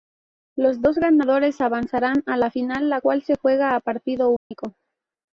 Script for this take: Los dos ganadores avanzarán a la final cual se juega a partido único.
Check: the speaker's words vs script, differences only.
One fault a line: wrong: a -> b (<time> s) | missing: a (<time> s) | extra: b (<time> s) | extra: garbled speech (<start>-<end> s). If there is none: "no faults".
extra: la (2.9 s)